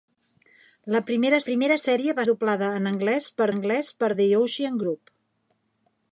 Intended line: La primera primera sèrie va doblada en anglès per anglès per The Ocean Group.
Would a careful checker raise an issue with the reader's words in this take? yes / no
no